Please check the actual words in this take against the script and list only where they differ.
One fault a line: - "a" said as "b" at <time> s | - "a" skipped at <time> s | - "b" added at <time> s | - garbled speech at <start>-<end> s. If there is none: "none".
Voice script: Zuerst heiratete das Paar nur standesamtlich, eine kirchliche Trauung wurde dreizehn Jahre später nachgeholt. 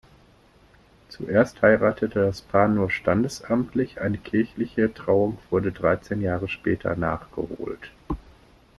none